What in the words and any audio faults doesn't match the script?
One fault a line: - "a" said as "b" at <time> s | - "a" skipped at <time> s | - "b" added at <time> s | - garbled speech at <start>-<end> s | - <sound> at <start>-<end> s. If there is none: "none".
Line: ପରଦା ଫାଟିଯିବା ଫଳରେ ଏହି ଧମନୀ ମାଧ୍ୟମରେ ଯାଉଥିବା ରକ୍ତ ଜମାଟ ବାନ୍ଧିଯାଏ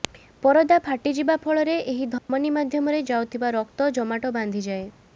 - dropout at 2.2-2.3 s